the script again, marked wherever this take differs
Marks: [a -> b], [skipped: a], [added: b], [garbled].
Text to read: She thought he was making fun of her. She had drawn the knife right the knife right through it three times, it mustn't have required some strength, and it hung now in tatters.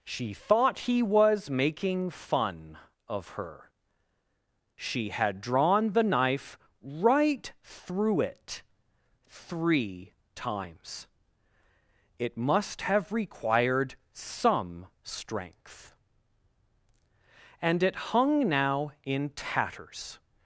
She thought he was making fun of her. She had drawn the knife right [skipped: the knife right] through it three times, it [mustn't -> must] have required some strength, and it hung now in tatters.